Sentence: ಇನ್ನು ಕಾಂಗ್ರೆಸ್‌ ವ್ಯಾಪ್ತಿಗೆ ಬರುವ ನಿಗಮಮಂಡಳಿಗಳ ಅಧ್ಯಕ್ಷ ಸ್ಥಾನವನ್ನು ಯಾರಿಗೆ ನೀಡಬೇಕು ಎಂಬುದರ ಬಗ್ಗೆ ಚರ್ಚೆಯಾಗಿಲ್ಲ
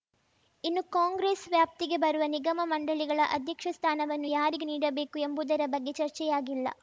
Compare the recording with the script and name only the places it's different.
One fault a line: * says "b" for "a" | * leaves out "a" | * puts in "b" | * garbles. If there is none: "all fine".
all fine